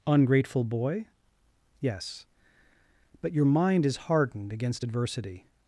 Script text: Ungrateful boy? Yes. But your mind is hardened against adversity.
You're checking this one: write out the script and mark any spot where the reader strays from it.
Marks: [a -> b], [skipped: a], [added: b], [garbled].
Ungrateful boy? Yes. But your mind is hardened against adversity.